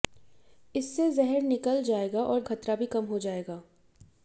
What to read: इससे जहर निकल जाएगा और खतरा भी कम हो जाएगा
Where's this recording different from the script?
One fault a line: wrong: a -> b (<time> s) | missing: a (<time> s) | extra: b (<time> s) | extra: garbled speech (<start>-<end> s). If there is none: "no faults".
no faults